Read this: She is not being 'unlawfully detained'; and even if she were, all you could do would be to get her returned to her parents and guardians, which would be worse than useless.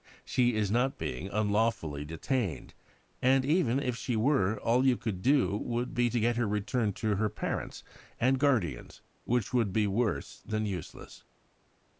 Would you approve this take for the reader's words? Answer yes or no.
yes